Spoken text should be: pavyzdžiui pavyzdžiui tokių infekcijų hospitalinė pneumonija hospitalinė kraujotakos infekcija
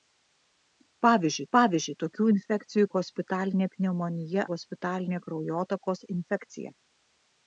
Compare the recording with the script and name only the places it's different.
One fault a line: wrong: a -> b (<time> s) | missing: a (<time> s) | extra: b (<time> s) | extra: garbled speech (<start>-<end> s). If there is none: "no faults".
no faults